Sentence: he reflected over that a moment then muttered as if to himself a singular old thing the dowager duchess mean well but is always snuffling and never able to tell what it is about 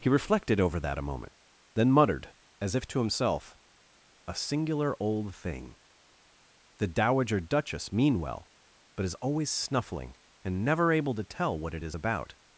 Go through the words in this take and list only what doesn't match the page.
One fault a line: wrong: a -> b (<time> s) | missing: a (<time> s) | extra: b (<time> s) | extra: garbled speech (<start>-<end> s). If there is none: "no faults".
no faults